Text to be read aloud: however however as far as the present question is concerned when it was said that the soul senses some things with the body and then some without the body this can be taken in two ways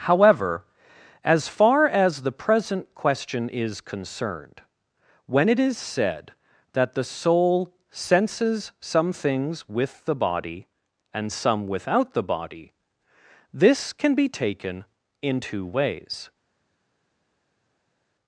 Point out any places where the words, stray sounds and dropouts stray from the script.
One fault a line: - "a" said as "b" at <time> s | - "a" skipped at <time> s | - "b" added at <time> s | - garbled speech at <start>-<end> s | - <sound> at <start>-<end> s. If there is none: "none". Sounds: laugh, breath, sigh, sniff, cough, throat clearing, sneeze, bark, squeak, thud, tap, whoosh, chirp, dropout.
- "however" skipped at 0.7 s
- "was" said as "is" at 5.6 s
- "then" skipped at 11.3 s